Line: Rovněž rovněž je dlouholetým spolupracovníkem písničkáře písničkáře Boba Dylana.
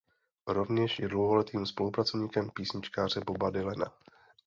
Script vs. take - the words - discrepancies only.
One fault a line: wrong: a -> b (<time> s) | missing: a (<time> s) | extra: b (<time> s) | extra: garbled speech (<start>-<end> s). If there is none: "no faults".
missing: rovněž (1.0 s)
missing: písničkáře (3.2 s)